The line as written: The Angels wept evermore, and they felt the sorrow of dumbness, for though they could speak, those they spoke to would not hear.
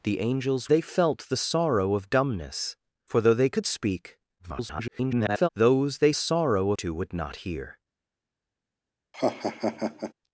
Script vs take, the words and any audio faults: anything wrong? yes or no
yes